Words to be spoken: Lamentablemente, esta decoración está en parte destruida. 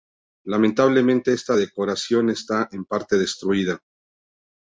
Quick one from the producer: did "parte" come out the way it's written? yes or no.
yes